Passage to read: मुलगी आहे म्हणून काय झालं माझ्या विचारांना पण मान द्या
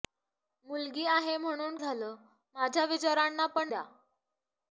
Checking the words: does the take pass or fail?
fail